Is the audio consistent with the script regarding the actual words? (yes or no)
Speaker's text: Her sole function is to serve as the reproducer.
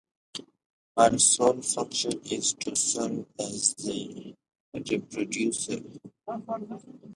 yes